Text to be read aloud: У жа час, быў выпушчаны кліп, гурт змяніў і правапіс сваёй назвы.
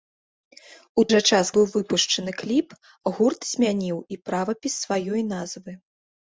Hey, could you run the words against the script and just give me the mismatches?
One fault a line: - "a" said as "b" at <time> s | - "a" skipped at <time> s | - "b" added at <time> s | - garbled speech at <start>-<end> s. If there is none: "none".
none